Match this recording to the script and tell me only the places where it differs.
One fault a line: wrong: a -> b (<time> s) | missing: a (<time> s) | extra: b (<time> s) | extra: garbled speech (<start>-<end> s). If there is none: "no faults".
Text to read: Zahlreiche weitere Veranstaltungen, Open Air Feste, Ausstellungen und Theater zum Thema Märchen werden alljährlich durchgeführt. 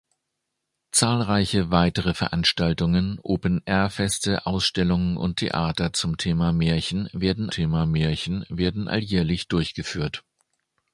extra: Thema Märchen werden (7.5 s)